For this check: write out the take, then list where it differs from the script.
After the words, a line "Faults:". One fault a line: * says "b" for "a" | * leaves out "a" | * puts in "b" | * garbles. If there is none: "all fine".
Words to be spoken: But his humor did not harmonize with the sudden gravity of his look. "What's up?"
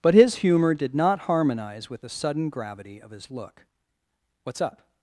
But his humor did not harmonize with the sudden gravity of his look. "What's up?"
Faults:
all fine